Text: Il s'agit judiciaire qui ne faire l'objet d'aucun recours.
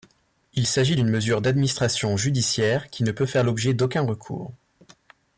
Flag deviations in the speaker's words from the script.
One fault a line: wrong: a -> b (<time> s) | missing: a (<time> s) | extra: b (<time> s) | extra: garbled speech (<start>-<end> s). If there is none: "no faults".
extra: d'une mesure d'administration (0.9 s)
extra: peut (3.1 s)